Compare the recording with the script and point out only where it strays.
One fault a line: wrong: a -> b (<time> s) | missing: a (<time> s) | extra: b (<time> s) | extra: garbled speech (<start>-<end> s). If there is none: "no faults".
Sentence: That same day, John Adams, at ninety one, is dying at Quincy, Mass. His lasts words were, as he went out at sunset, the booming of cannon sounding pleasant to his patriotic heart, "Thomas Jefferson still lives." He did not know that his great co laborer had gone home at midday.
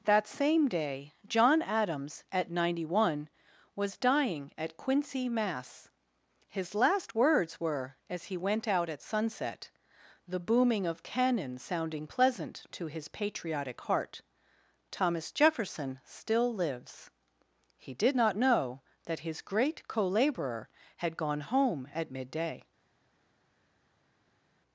wrong: is -> was (3.8 s)
wrong: lasts -> last (6.7 s)